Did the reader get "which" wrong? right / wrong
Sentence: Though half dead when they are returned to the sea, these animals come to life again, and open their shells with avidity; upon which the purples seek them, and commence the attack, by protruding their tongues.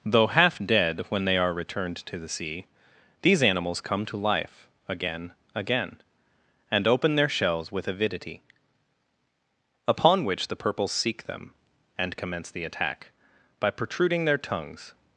right